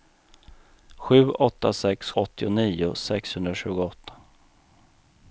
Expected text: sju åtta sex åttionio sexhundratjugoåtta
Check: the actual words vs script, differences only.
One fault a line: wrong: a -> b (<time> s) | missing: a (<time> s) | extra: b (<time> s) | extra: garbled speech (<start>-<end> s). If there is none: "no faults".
no faults